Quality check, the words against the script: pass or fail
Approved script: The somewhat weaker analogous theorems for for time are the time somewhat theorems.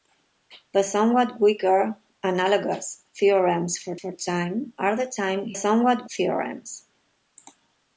pass